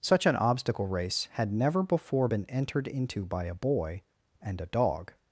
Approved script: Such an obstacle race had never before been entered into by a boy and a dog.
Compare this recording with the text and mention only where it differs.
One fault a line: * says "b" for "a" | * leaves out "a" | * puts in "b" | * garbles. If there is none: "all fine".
all fine